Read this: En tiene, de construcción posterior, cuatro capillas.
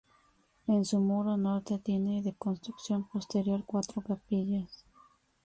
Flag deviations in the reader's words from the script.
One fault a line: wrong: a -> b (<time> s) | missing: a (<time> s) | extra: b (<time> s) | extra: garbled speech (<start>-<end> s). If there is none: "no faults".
extra: su muro norte (0.8 s)